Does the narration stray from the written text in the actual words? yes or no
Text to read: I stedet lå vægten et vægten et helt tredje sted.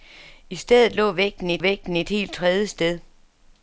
no